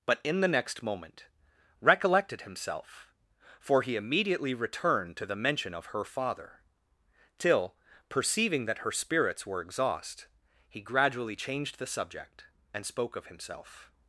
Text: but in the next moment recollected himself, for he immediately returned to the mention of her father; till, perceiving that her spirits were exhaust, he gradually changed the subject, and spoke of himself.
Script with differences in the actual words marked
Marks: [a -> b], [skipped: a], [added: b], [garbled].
but in the next moment recollected himself, for he immediately returned to the mention of her father; till, perceiving that her spirits were exhaust, he gradually changed the subject, and spoke of himself.